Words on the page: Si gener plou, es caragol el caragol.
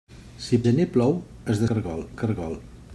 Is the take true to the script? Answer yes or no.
yes